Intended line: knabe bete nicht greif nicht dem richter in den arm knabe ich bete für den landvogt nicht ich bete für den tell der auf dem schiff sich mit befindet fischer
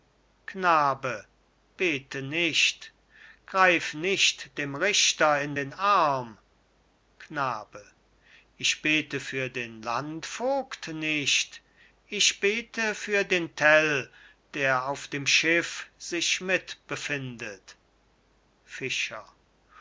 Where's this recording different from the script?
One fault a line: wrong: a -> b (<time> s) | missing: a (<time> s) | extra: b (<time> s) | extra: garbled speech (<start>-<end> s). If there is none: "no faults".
no faults